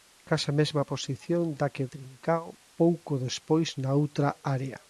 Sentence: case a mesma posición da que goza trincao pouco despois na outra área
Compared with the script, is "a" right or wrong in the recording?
right